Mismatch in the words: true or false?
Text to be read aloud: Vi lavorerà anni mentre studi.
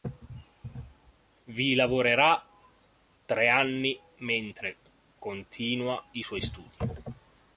true